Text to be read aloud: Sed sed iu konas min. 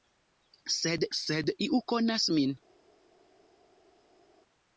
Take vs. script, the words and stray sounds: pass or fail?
pass